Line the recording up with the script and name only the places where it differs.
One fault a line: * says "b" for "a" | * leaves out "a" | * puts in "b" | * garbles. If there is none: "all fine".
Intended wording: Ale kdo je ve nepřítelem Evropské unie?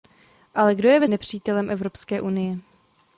all fine